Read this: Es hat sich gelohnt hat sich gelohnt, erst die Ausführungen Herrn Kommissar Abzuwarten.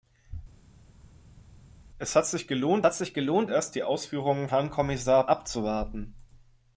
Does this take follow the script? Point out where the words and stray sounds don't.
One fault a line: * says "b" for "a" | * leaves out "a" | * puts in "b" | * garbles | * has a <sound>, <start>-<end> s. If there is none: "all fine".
all fine